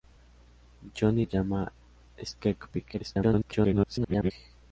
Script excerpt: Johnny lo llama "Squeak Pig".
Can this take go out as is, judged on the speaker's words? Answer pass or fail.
fail